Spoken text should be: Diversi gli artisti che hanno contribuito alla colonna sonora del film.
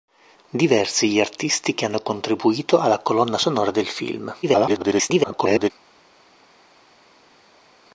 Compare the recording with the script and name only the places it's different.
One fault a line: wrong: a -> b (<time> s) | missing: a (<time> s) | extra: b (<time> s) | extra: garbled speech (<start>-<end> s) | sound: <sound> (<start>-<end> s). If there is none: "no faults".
extra: garbled speech (4.4-5.7 s)